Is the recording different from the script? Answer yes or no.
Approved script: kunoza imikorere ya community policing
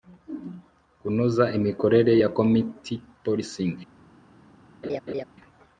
no